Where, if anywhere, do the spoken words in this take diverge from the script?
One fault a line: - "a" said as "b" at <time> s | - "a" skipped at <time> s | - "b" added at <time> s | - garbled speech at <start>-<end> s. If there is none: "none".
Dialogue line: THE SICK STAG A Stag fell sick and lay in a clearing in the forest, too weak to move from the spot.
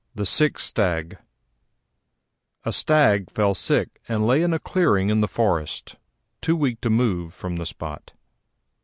none